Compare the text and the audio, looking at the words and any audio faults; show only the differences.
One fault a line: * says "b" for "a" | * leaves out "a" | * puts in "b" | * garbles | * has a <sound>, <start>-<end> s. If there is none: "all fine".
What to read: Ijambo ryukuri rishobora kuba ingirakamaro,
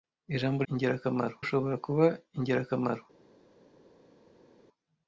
* says "ingirakamaro" for "ryukuri"